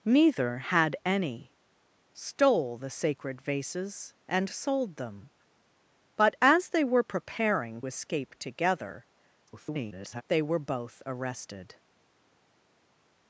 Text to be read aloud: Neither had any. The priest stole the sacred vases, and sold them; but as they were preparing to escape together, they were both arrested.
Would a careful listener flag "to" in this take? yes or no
yes